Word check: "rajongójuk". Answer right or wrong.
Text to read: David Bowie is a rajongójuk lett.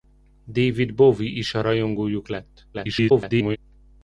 right